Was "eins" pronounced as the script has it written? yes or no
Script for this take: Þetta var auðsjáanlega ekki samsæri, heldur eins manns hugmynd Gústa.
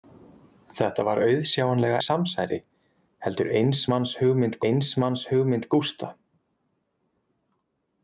yes